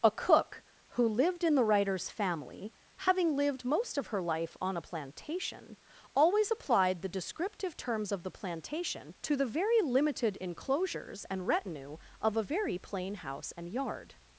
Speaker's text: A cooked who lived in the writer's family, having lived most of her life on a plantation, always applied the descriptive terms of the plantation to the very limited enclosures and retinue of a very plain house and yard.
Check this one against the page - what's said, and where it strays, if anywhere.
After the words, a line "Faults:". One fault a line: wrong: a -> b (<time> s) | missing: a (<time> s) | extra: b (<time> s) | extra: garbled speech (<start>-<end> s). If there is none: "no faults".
A cook who lived in the writer's family, having lived most of her life on a plantation, always applied the descriptive terms of the plantation to the very limited enclosures and retinue of a very plain house and yard.
Faults:
wrong: cooked -> cook (0.1 s)